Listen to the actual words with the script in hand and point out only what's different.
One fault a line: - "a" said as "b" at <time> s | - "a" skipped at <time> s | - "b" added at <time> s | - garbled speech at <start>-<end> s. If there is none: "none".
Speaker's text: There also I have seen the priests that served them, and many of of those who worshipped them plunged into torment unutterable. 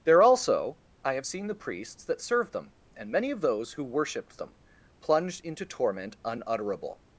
- "of" skipped at 3.4 s